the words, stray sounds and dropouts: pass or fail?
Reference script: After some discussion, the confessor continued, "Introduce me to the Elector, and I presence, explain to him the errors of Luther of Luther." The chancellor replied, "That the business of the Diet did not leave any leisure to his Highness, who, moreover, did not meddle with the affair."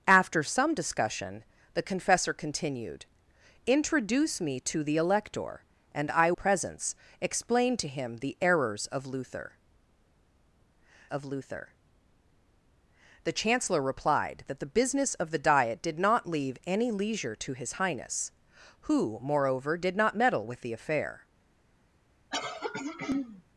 fail